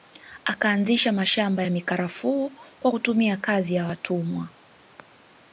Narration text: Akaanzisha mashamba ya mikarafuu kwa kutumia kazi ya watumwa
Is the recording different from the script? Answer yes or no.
no